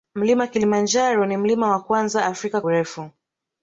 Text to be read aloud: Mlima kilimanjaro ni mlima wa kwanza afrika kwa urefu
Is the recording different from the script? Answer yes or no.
yes